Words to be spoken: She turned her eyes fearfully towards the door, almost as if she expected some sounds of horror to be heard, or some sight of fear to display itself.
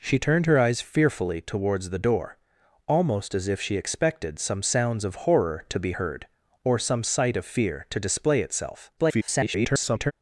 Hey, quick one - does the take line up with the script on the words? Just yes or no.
no